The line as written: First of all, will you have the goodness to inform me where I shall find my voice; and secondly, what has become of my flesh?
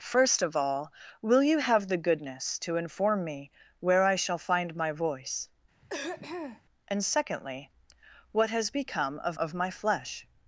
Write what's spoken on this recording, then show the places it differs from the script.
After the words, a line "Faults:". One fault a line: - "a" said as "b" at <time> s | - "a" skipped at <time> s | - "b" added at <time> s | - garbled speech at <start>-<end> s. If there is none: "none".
First of all, will you have the goodness to inform me where I shall find my voice; and secondly, what has become of of my flesh?
Faults:
- "of" added at 9.4 s